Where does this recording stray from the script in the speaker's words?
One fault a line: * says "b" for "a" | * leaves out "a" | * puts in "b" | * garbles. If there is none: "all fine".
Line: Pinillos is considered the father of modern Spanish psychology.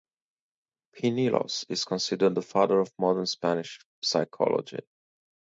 all fine